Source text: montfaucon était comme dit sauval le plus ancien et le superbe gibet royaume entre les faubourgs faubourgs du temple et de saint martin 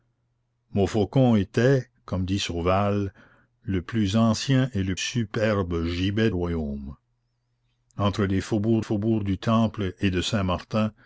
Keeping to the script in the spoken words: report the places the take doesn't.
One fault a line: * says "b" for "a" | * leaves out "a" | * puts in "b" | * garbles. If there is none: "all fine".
all fine